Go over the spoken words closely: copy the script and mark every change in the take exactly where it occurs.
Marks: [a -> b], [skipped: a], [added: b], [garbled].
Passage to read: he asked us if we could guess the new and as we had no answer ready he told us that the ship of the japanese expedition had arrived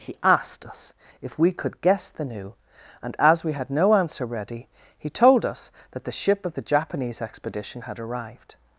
he asked us if we could guess the new and as we had no answer ready he told us that the ship of the japanese expedition had arrived